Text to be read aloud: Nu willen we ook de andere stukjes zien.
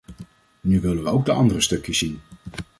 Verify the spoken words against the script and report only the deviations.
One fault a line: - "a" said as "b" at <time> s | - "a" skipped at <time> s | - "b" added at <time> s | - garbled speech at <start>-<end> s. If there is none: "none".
none